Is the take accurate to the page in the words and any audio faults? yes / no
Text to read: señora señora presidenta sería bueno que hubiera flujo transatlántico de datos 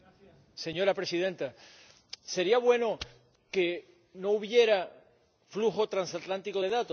no